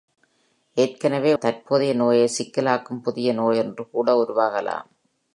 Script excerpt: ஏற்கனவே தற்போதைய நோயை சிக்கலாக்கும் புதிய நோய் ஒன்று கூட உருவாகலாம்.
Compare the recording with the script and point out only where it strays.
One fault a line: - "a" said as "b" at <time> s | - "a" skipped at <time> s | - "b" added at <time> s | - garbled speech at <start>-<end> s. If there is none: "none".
none